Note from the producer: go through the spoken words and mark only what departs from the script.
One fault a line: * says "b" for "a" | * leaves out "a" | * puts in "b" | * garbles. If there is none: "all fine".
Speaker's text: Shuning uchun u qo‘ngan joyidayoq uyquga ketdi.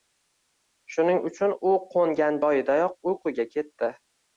all fine